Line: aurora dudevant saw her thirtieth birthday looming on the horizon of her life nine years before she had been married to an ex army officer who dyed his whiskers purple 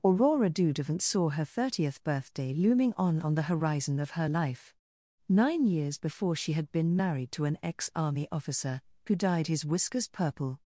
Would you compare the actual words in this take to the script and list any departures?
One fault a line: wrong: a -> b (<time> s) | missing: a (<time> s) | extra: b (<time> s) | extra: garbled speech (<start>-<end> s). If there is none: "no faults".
extra: on (3.2 s)